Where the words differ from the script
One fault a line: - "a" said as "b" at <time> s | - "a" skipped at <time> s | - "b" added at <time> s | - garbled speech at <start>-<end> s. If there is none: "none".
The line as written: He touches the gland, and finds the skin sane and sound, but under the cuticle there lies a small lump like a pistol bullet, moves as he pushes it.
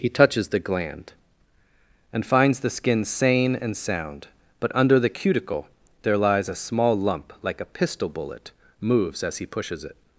none